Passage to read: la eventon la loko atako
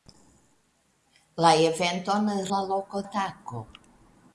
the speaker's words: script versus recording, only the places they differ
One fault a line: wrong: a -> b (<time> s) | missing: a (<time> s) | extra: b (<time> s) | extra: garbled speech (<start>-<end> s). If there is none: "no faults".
no faults